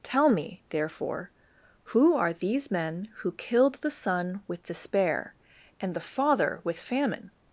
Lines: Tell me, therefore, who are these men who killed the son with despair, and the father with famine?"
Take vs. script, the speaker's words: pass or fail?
pass